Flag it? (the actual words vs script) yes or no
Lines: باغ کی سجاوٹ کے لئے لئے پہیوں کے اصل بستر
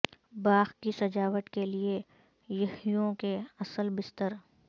yes